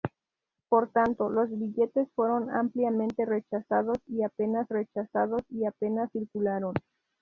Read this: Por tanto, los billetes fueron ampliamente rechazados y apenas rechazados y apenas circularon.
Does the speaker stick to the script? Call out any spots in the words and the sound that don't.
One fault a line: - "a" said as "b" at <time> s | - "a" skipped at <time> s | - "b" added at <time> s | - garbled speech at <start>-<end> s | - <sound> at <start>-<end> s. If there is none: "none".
none